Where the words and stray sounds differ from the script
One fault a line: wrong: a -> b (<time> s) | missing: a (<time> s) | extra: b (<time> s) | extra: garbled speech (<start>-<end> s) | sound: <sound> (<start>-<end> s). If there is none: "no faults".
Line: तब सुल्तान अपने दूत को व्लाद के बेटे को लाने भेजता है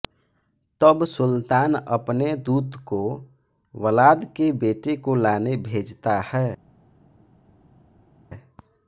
no faults